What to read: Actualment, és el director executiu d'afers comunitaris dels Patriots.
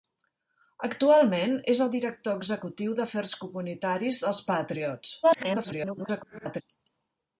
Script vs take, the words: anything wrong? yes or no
yes